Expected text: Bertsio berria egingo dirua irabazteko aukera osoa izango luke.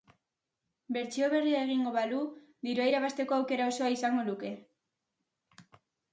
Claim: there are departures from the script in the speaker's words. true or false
true